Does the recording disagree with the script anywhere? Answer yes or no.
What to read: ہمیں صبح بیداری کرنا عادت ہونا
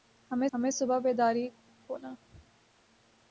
yes